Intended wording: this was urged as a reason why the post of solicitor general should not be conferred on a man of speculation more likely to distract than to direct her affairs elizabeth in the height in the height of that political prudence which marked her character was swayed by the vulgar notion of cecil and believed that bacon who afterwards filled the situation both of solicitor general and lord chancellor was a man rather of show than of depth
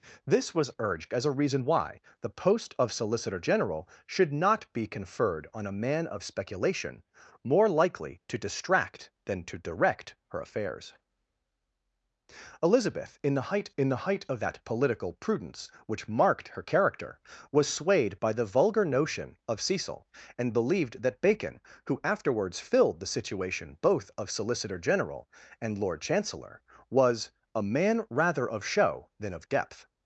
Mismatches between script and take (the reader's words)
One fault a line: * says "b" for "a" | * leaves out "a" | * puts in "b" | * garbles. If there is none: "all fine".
all fine